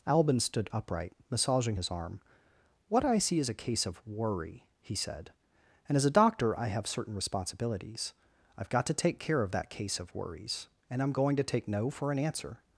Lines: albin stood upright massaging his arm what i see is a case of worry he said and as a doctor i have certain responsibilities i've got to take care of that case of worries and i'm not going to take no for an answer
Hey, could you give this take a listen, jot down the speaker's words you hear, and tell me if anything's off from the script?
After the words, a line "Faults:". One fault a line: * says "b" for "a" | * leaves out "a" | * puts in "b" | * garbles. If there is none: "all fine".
albin stood upright massaging his arm what i see is a case of worry he said and as a doctor i have certain responsibilities i've got to take care of that case of worries and i'm going to take no for an answer
Faults:
* leaves out "not"